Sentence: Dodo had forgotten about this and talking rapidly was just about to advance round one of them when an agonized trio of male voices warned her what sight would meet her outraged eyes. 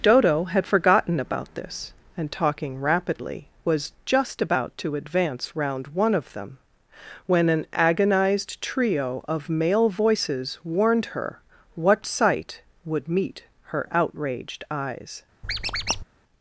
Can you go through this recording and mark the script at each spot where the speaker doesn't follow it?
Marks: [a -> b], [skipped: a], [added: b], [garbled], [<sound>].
Dodo had forgotten about this and talking rapidly was just about to advance round one of them when an agonized trio of male voices warned her what sight would meet her outraged eyes. [squeak]